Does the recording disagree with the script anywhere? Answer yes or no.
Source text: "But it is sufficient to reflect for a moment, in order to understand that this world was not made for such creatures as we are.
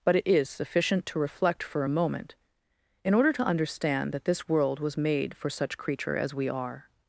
yes